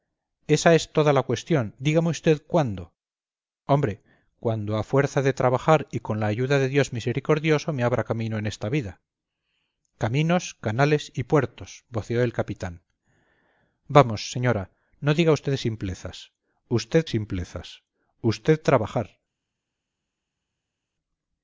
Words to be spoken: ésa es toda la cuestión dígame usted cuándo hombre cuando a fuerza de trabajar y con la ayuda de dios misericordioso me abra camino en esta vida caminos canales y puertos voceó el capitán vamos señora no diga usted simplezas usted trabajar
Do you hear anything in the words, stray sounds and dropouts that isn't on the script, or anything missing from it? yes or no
yes